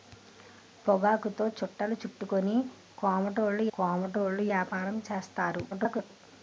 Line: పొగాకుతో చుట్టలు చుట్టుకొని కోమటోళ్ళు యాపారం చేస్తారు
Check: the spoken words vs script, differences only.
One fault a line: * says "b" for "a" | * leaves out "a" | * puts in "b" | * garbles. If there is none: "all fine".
* puts in "కోమటోళ్ళు"
* garbles